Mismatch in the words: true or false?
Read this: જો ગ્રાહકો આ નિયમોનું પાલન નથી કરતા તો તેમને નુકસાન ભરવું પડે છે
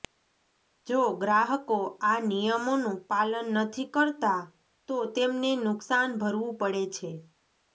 false